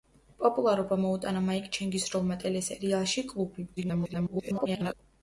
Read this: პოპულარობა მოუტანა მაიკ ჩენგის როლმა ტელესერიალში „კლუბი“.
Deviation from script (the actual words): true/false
true